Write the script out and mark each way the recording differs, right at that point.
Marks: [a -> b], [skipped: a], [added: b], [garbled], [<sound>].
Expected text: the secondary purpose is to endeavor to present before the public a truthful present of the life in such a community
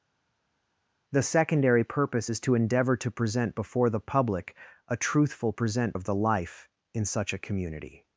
the secondary purpose is to endeavor to present before the public a truthful present of the life in such a community